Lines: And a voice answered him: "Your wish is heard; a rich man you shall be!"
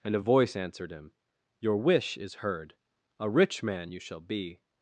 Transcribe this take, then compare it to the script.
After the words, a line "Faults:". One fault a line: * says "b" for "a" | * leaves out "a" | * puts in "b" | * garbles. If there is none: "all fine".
And a voice answered him: "Your wish is heard; a rich man you shall be!"
Faults:
all fine